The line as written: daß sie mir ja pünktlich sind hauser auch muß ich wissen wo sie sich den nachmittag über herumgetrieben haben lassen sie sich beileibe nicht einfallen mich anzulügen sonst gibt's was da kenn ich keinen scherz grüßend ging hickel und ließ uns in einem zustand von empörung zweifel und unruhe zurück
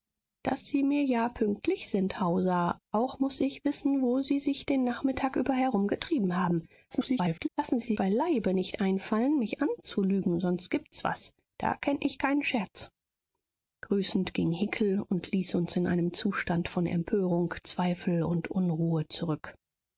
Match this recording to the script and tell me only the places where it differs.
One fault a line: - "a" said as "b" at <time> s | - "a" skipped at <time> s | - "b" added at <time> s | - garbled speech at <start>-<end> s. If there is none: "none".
- garbled speech at 6.9-7.5 s
- "sich" skipped at 7.9 s